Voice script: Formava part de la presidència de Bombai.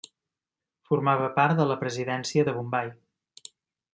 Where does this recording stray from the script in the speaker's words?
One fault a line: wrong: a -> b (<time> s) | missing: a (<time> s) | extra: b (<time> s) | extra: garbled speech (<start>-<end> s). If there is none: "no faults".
no faults